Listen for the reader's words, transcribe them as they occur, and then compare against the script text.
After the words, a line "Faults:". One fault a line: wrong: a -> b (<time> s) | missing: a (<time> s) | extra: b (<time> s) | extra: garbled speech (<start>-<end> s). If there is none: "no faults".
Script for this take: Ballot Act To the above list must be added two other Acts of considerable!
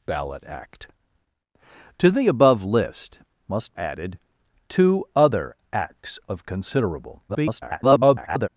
Ballot Act To the above list must added two other Acts of considerable! [garbled]
Faults:
missing: be (3.8 s)
extra: garbled speech (7.3-8.5 s)